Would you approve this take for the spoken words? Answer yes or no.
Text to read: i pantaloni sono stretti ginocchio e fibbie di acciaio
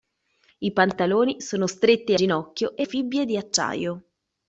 yes